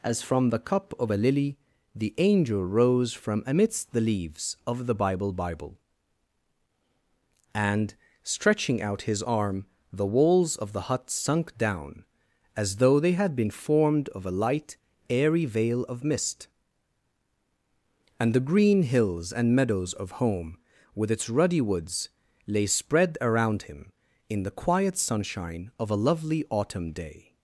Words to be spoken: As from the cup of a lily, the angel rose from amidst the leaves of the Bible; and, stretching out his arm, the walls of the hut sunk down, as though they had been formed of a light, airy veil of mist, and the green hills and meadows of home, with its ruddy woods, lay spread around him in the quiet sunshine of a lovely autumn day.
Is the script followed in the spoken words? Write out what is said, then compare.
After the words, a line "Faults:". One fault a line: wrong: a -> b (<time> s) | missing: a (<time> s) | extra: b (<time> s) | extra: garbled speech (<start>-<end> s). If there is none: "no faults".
As from the cup of a lily, the angel rose from amidst the leaves of the Bible Bible; and, stretching out his arm, the walls of the hut sunk down, as though they had been formed of a light, airy veil of mist, and the green hills and meadows of home, with its ruddy woods, lay spread around him in the quiet sunshine of a lovely autumn day.
Faults:
extra: Bible (5.3 s)